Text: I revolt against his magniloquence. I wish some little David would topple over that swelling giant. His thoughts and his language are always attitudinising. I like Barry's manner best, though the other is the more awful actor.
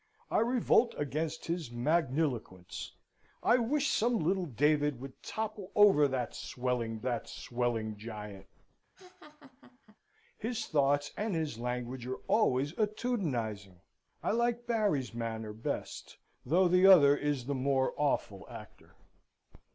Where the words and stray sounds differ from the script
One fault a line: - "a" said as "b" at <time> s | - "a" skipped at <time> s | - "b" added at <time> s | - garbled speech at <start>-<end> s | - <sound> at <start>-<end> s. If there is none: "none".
- "that swelling" added at 7.0 s
- laugh at 8.9-10.0 s